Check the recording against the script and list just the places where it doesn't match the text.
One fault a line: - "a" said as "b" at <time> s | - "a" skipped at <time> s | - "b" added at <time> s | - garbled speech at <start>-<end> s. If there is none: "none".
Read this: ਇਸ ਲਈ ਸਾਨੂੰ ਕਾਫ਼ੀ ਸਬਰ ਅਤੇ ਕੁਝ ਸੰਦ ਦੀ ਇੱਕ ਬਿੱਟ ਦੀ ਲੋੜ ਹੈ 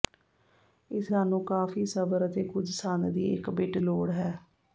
- "ਲਈ" skipped at 1.1 s
- "ਦੀ" skipped at 3.8 s